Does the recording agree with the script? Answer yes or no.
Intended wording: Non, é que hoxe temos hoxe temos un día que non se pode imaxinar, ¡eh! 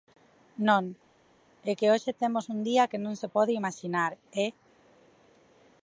no